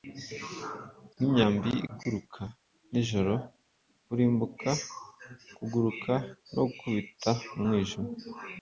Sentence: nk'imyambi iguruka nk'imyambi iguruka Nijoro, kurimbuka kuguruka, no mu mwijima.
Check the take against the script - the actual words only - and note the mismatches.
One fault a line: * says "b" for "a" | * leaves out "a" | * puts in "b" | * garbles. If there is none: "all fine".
* leaves out "nk'imyambi iguruka"
* puts in "gukubita"